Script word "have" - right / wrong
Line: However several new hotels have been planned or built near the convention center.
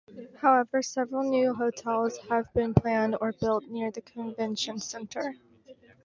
right